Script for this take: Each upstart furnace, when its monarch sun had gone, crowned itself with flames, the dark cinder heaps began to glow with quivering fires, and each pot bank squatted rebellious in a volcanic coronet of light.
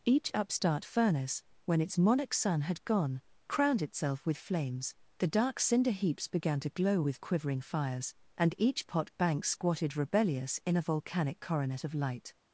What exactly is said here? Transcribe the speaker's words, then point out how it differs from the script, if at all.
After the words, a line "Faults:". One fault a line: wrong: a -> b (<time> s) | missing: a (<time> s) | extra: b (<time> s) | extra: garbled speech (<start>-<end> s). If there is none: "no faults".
Each upstart furnace, when its monarch sun had gone, crowned itself with flames, the dark cinder heaps began to glow with quivering fires, and each pot bank squatted rebellious in a volcanic coronet of light.
Faults:
no faults